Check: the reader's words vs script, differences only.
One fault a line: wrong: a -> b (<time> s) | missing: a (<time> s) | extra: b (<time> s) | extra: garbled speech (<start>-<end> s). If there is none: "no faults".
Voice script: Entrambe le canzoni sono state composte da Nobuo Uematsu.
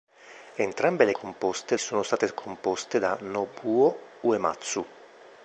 wrong: canzoni -> composte (1.1 s)